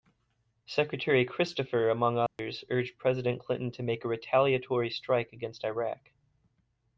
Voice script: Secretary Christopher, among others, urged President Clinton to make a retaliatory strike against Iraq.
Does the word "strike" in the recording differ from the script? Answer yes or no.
no